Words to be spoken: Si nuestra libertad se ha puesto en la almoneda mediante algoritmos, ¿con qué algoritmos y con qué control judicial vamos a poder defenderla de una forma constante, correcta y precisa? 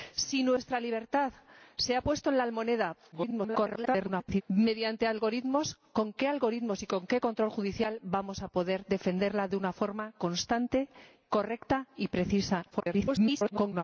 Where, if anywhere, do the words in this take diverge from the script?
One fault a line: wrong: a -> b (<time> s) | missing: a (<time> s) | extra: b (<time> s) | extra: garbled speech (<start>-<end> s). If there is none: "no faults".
extra: garbled speech (3.1-4.4 s)
extra: garbled speech (12.7-13.8 s)